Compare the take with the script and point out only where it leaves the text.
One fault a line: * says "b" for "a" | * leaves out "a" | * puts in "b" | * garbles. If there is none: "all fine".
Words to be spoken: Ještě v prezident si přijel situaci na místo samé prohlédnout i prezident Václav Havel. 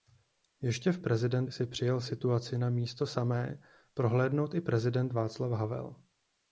all fine